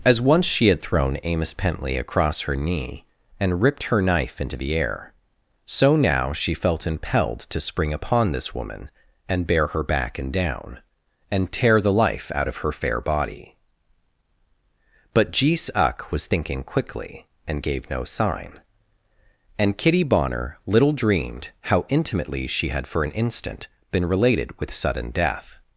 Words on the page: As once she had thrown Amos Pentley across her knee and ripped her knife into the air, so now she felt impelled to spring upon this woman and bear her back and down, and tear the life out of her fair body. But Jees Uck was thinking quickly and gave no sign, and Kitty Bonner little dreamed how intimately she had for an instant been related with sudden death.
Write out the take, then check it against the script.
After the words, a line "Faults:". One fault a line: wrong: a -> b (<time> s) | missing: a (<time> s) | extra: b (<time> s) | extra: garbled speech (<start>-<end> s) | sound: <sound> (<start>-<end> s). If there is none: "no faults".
As once she had thrown Amos Pentley across her knee and ripped her knife into the air, so now she felt impelled to spring upon this woman and bear her back and down, and tear the life out of her fair body. But Jees Uck was thinking quickly and gave no sign, and Kitty Bonner little dreamed how intimately she had for an instant been related with sudden death.
Faults:
no faults